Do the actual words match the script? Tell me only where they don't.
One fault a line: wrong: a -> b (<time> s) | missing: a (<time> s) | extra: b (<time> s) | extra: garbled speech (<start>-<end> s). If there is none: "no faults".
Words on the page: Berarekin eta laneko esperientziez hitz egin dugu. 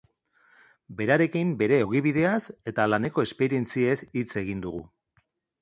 extra: bere ogibideaz (1.6 s)